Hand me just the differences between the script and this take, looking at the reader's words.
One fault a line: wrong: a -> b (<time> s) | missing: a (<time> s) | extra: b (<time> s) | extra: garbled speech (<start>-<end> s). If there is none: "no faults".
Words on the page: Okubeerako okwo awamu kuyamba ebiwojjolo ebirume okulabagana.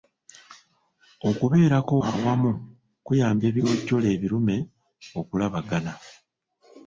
missing: okwo (1.9 s)